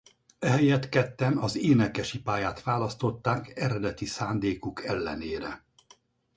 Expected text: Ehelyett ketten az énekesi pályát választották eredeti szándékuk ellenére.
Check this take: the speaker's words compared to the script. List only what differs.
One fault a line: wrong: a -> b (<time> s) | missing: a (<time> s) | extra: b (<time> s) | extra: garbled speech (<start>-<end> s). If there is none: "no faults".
no faults